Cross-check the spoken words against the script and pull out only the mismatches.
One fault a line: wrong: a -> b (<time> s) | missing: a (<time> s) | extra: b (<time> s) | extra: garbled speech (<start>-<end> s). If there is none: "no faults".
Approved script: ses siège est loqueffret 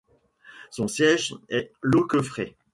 wrong: ses -> son (0.7 s)